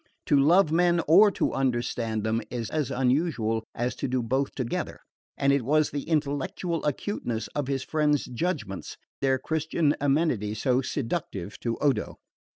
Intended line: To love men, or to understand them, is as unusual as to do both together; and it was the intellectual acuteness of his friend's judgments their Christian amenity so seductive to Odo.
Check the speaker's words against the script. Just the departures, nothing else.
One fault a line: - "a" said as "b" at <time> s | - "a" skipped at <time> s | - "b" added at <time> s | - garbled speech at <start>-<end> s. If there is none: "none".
none